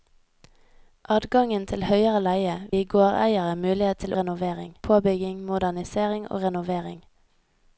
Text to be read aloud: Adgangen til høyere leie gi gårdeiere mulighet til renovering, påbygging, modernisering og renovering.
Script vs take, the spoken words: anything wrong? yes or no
no